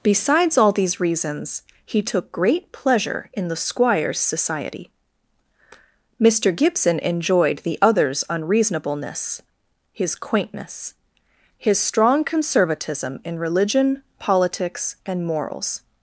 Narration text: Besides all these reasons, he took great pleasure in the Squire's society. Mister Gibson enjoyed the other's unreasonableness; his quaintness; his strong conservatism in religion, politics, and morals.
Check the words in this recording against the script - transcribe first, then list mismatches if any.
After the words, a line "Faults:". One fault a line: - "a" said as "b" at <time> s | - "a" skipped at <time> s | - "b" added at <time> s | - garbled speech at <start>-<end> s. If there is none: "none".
Besides all these reasons, he took great pleasure in the Squire's society. Mister Gibson enjoyed the other's unreasonableness; his quaintness; his strong conservatism in religion, politics, and morals.
Faults:
none